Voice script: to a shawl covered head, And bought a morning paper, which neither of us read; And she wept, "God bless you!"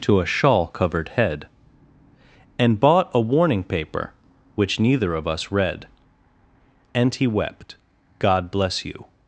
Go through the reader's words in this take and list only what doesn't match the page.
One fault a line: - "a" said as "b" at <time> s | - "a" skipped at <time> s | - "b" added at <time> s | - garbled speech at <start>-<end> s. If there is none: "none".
- "morning" said as "warning" at 3.2 s
- "she" said as "he" at 7.1 s